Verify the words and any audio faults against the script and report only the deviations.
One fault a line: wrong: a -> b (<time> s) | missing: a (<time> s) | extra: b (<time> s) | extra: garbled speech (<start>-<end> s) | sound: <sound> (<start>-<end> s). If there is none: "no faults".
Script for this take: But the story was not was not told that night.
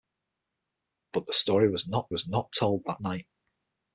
no faults